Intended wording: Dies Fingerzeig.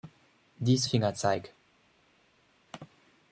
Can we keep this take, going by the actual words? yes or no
yes